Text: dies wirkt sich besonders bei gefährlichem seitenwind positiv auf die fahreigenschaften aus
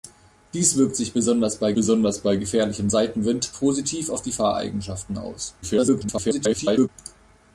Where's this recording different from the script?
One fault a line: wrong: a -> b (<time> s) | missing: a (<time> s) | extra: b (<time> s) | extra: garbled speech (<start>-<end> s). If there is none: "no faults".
extra: besonders bei (1.7 s)
extra: garbled speech (5.6-6.9 s)